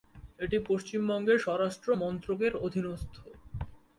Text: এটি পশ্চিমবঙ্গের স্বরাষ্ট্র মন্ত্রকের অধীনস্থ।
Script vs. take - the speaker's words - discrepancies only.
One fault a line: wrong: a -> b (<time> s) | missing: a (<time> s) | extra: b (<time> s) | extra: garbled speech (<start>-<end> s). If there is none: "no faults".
no faults